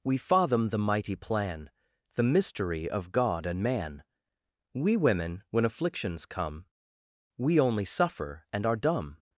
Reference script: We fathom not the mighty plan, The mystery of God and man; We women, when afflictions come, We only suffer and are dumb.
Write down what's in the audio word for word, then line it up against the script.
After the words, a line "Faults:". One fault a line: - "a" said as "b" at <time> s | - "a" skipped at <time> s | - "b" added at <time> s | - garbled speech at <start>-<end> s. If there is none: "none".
We fathom the mighty plan, The mystery of God and man; We women, when afflictions come, We only suffer and are dumb.
Faults:
- "not" skipped at 0.7 s